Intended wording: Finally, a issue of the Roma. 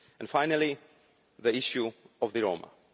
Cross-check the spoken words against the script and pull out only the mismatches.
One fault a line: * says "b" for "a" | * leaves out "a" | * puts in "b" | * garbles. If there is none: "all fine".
* says "the" for "a"